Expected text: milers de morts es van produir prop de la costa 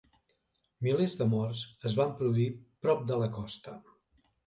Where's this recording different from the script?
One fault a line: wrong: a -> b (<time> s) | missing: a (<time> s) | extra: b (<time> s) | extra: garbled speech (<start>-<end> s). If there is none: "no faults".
no faults